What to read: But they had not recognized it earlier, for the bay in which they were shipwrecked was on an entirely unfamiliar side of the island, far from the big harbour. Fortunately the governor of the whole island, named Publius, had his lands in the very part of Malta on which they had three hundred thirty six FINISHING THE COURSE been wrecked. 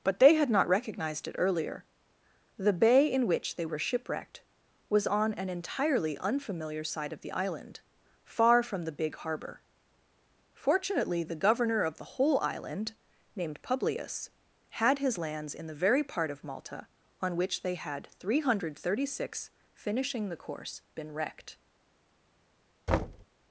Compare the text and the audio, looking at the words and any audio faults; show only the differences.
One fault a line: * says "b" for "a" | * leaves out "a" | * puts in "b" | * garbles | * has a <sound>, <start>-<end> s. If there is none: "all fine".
* leaves out "for"
* has a thud, 22.9-23.3 s